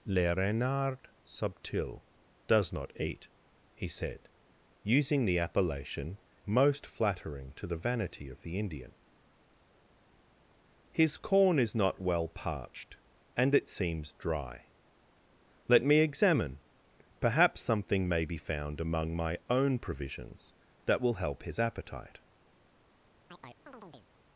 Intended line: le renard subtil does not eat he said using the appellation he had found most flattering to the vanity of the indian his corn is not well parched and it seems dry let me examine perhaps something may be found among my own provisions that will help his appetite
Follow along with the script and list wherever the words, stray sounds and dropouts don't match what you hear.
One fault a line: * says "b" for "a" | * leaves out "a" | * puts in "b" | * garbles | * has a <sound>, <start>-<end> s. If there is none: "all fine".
* leaves out "he had found"
* has a chirp, 23.3-24.1 s